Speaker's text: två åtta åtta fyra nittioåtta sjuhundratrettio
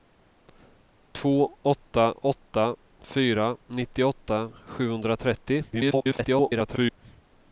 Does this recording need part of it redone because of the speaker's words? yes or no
yes